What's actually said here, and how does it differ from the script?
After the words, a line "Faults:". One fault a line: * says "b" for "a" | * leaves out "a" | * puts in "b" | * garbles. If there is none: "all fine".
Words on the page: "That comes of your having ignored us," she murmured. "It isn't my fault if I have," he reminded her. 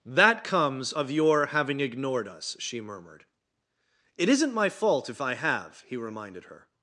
"That comes of your having ignored us," she murmured. "It isn't my fault if I have," he reminded her.
Faults:
all fine